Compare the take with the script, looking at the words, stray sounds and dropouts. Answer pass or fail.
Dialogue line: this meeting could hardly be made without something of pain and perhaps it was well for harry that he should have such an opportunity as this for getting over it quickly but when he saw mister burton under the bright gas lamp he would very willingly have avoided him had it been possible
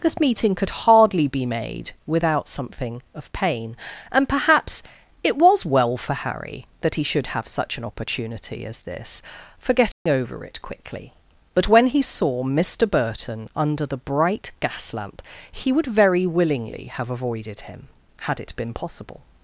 fail